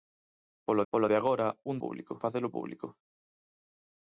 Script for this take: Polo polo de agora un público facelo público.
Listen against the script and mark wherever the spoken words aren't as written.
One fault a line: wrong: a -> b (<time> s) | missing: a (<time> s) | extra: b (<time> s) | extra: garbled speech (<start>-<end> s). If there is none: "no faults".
no faults